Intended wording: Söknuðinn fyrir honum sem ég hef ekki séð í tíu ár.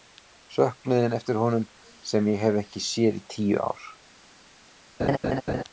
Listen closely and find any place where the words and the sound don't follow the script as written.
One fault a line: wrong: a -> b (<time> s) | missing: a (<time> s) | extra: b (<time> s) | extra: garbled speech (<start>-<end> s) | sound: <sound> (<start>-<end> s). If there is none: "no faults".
wrong: fyrir -> eftir (1.2 s)
sound: laugh (5.0-5.6 s)